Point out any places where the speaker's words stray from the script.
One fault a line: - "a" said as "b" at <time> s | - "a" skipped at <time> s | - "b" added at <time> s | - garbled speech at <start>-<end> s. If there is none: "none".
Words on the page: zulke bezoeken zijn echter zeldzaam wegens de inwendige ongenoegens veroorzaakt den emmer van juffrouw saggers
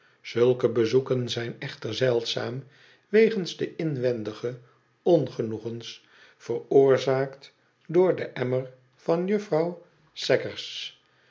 - "door" added at 7.9 s